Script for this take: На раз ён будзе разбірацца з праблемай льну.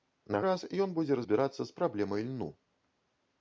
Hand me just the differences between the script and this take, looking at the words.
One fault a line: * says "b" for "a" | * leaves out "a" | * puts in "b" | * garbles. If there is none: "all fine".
all fine